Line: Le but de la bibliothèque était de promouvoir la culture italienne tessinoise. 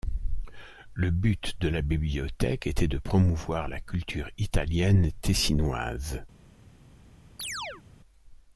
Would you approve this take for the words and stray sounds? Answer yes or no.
no